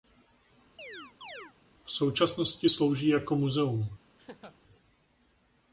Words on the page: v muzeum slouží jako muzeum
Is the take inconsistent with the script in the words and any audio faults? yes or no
yes